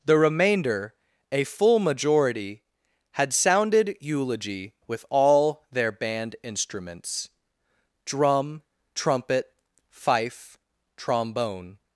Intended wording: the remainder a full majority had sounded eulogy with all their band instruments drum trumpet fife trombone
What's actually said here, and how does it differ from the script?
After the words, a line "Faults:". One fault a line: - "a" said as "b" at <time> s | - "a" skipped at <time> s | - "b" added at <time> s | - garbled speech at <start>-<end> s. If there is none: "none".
the remainder a full majority had sounded eulogy with all their band instruments drum trumpet fife trombone
Faults:
none